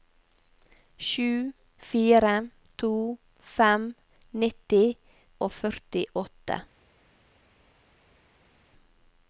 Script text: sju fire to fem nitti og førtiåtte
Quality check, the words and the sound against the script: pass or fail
pass